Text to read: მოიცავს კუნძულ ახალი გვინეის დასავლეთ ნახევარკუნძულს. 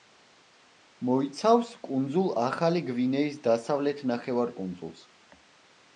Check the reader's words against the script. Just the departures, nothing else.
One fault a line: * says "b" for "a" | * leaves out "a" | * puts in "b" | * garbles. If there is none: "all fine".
all fine